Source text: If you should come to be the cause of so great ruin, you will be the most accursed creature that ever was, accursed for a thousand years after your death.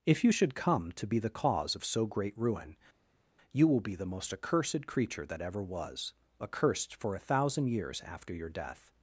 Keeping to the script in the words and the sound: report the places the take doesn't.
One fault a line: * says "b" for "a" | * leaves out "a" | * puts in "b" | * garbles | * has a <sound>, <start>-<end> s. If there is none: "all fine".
all fine